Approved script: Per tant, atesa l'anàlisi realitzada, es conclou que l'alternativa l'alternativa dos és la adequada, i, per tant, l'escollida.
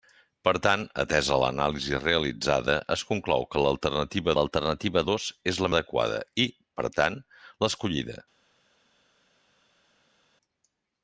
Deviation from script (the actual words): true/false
false